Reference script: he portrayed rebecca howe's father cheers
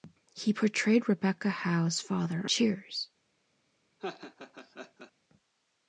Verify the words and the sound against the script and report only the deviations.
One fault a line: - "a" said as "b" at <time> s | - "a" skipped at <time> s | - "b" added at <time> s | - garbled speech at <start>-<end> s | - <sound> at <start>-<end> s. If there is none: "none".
- laugh at 4.0-5.1 s